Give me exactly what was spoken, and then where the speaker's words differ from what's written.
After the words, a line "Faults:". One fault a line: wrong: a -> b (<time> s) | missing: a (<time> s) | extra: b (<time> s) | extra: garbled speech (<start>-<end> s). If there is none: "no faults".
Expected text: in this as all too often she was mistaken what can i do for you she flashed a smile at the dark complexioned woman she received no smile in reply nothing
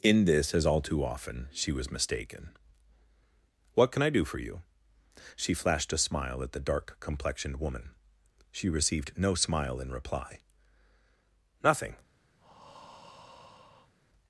in this as all too often she was mistaken what can i do for you she flashed a smile at the dark complexioned woman she received no smile in reply nothing
Faults:
no faults